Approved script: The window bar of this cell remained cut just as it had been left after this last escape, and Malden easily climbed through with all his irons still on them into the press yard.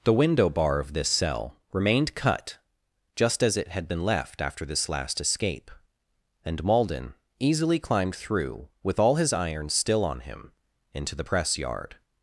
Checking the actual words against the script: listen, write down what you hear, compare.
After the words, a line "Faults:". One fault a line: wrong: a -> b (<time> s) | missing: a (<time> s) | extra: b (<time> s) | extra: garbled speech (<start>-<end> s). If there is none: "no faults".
The window bar of this cell remained cut just as it had been left after this last escape, and Malden easily climbed through with all his irons still on him into the press yard.
Faults:
wrong: them -> him (10.2 s)